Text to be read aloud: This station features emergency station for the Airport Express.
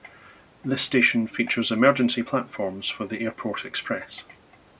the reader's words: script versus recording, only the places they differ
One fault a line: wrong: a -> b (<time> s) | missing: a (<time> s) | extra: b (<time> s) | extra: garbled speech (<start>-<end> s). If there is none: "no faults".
wrong: station -> platforms (2.2 s)